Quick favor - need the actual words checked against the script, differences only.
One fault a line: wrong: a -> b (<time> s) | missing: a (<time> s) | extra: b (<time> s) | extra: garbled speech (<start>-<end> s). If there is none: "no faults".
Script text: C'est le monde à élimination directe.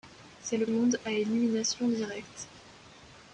no faults